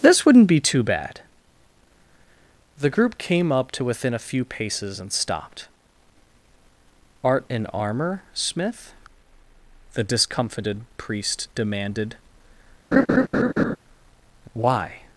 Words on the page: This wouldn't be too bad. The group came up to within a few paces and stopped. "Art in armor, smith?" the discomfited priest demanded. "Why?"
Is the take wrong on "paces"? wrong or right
right